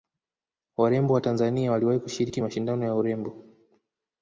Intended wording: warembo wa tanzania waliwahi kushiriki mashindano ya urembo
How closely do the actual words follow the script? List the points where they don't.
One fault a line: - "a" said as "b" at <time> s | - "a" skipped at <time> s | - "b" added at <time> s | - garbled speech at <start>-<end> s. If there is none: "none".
none